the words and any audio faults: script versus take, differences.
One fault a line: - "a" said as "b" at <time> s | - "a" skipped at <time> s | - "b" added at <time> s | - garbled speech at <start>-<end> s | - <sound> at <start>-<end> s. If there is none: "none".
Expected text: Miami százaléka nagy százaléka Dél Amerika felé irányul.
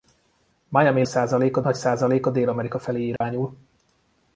- dropout at 3.2-3.2 s